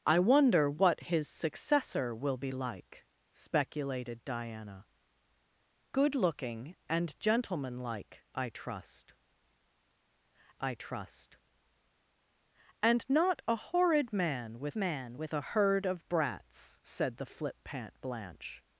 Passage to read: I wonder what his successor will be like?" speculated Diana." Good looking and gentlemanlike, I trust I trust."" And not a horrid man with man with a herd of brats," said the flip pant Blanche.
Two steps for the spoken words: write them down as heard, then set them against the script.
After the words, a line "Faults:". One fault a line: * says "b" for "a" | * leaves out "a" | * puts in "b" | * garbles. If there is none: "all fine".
I wonder what his successor will be like?" speculated Diana." Good looking and gentlemanlike, I trust I trust."" And not a horrid man with man with a herd of brats," said the flip pant Blanche.
Faults:
all fine